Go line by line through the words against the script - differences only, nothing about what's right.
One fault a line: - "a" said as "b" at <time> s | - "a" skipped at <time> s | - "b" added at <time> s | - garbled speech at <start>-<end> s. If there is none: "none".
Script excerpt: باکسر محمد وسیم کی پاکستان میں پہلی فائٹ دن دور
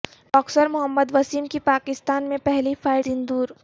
none